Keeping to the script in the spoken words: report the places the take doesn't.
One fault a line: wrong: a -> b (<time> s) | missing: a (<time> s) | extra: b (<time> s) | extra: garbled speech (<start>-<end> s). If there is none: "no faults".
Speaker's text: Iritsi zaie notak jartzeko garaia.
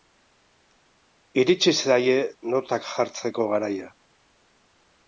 no faults